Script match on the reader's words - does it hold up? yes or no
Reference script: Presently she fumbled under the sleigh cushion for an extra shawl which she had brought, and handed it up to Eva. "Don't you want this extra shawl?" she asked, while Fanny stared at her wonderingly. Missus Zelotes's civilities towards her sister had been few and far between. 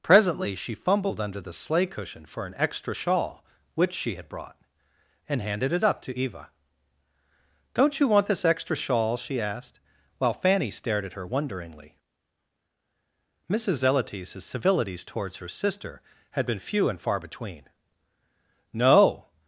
no